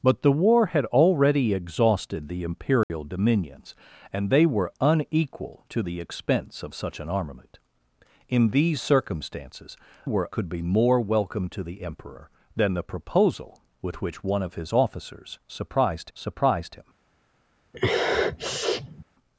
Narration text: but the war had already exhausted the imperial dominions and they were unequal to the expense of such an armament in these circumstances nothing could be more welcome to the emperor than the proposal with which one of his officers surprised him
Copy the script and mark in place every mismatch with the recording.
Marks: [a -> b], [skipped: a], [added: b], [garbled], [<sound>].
but the war had already exhausted the imperial [dropout] dominions and they were unequal to the expense of such an armament in these circumstances [nothing -> were] could be more welcome to the emperor than the proposal with which one of his officers surprised [added: surprised] him [sniff]